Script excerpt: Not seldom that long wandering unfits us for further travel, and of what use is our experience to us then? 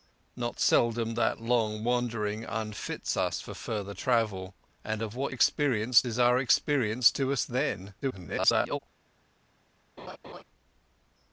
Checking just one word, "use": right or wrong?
wrong